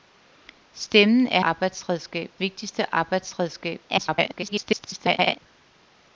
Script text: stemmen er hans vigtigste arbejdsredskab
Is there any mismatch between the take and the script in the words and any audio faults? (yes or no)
yes